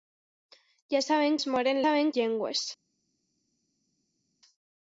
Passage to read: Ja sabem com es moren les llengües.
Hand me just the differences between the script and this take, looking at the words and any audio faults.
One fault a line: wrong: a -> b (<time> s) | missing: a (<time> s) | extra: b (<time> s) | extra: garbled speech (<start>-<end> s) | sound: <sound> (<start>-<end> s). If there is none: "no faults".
missing: com (1.4 s)
wrong: les -> sabem (1.8 s)